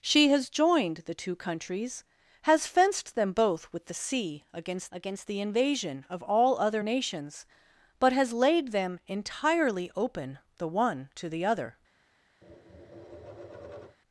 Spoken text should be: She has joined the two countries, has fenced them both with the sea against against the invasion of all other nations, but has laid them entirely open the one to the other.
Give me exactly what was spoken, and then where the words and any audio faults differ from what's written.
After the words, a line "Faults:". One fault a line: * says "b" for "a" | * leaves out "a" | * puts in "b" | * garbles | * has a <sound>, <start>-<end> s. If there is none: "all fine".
She has joined the two countries, has fenced them both with the sea against against the invasion of all other nations, but has laid them entirely open the one to the other.
Faults:
* has a tap, 12.4-14.0 s